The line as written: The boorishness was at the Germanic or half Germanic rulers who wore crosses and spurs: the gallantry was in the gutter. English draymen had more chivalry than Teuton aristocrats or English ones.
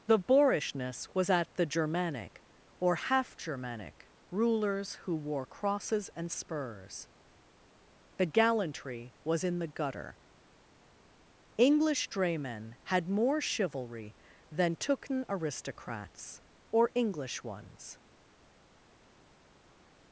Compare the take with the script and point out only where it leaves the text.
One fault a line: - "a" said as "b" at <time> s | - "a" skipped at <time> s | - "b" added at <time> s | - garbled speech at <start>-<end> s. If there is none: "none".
none